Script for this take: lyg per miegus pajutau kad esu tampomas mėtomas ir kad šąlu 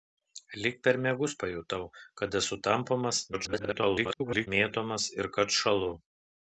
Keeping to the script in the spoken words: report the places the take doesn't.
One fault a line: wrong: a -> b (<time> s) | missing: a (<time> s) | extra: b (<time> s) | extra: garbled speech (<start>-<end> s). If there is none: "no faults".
extra: garbled speech (3.3-4.5 s)